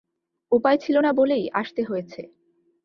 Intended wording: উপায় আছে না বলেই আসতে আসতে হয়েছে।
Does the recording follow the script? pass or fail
fail